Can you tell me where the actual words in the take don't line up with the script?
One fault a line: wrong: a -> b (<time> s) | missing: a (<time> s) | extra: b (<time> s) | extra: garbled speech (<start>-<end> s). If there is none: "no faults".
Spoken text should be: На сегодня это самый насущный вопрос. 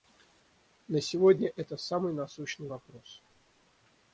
no faults